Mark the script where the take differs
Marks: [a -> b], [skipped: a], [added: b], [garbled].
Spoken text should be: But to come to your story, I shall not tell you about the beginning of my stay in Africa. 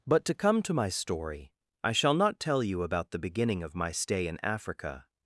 But to come to [your -> my] story, I shall not tell you about the beginning of my stay in Africa.